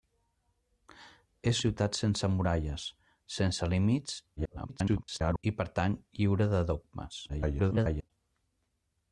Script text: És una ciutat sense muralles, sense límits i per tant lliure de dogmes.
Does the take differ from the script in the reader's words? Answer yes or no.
yes